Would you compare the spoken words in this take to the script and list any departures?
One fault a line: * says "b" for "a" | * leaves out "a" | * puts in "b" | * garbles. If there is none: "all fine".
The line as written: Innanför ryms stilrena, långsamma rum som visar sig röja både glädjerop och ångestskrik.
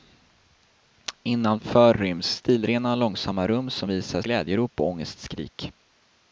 * leaves out "sig röja både"